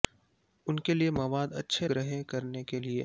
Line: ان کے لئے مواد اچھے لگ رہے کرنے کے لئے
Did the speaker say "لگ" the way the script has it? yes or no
no